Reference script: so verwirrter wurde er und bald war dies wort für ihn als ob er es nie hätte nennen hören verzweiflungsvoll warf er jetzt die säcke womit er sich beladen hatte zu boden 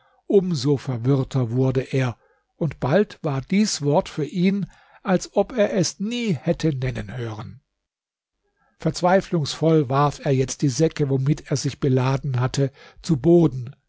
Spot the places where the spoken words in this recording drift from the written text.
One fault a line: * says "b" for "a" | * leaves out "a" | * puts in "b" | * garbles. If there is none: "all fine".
all fine